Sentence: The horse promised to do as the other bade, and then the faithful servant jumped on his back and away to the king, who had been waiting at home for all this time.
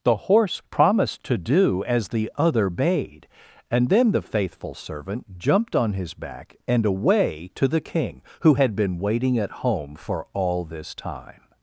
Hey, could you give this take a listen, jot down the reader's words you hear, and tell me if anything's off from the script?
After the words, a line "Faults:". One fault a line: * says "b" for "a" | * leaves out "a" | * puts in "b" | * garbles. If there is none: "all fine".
The horse promised to do as the other bade, and then the faithful servant jumped on his back and away to the king, who had been waiting at home for all this time.
Faults:
all fine